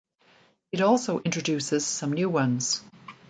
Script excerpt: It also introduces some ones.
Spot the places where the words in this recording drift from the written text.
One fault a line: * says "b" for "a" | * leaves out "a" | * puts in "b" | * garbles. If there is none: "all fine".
* puts in "new"